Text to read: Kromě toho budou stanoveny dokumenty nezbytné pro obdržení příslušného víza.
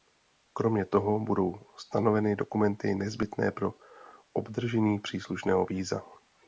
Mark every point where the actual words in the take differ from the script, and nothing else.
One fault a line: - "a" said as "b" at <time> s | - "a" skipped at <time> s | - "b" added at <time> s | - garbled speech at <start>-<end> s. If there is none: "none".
none